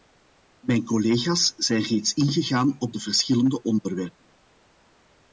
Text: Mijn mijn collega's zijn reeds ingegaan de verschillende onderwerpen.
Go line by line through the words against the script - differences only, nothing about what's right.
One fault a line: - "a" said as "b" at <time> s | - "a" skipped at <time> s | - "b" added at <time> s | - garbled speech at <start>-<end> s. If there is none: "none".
- "mijn" skipped at 0.8 s
- "op" added at 2.8 s